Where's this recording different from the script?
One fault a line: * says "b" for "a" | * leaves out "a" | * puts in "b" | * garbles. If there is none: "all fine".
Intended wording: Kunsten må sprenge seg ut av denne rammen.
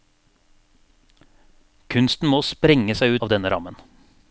* leaves out "ut"